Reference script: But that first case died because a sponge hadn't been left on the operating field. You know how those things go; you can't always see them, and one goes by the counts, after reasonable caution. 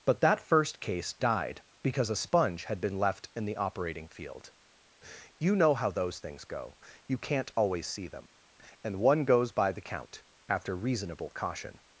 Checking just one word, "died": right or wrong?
right